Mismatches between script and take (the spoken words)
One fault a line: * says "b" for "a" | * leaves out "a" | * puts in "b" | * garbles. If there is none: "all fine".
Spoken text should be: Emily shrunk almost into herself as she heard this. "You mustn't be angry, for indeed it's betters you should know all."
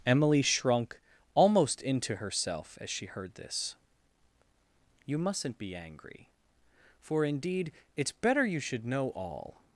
* says "better" for "betters"